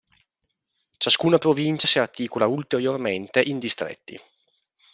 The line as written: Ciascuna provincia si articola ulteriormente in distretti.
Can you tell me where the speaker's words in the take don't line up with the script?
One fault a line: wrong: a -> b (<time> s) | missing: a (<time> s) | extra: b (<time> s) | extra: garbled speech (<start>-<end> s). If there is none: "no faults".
no faults